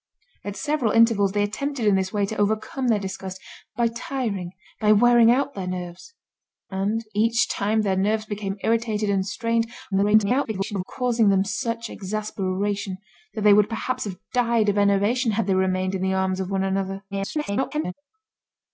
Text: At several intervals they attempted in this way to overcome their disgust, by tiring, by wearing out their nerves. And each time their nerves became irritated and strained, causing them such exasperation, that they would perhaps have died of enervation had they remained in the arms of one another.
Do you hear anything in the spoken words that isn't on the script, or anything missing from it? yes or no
yes